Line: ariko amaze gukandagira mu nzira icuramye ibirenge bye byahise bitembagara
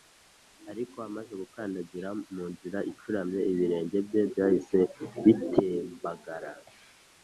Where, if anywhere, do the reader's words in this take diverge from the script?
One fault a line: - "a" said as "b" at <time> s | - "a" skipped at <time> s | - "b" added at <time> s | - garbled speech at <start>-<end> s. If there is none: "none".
none